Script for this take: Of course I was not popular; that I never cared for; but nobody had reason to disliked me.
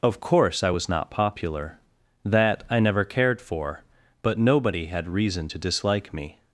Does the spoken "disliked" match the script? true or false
false